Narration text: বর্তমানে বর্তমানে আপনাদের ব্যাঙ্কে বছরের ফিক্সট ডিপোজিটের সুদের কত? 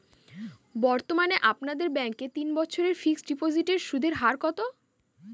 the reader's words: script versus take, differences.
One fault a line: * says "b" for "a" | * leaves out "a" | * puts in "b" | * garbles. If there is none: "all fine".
* leaves out "বর্তমানে"
* puts in "তিন"
* puts in "হার"